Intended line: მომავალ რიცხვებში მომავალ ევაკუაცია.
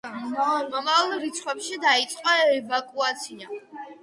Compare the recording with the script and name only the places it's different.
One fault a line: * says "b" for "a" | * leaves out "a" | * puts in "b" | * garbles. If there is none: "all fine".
* says "დაიწყო" for "მომავალ"